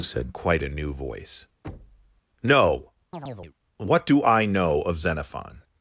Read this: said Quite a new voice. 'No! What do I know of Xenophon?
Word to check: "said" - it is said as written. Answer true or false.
true